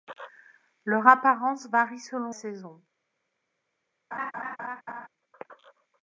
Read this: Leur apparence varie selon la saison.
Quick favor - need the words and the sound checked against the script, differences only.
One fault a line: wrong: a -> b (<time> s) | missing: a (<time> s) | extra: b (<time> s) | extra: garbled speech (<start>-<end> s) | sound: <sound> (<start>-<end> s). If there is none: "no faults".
missing: la (2.4 s)
sound: laugh (4.1-5.1 s)